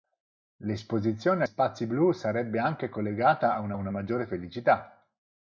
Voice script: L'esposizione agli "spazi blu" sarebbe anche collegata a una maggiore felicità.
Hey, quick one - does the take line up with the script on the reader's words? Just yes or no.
no